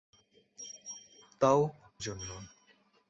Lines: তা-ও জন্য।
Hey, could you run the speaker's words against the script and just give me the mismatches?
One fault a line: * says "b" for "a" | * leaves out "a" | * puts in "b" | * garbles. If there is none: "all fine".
all fine